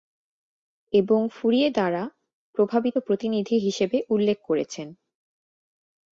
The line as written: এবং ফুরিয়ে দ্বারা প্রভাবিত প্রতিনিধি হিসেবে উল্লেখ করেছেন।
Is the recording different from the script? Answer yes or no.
no